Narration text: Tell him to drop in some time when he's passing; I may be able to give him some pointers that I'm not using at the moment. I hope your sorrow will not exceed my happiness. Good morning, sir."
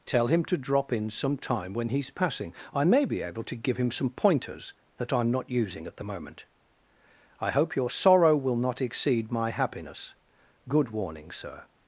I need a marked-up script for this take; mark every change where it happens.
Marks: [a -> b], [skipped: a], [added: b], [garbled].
Tell him to drop in some time when he's passing; I may be able to give him some pointers that I'm not using at the moment. I hope your sorrow will not exceed my happiness. Good [morning, -> warning] sir."